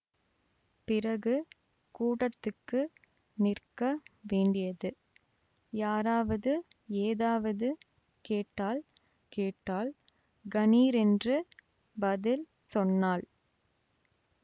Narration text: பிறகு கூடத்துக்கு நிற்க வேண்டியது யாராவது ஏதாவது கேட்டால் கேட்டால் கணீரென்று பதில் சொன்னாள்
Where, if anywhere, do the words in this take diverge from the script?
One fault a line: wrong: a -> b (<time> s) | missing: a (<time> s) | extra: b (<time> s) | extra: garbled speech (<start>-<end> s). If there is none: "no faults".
no faults